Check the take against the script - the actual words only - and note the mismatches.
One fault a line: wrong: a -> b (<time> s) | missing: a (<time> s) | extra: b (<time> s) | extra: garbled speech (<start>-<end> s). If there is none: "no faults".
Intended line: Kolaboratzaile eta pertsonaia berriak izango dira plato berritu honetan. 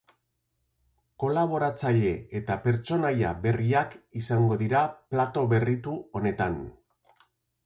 no faults